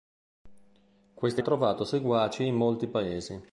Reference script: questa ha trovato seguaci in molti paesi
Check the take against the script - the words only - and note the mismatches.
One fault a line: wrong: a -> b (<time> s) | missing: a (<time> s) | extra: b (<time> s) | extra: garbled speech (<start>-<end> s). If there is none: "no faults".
no faults